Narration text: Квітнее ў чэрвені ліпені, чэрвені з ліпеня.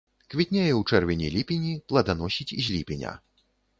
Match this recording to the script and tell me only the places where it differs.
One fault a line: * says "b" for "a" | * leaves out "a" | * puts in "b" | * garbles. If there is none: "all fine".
* says "пладаносіць" for "чэрвені"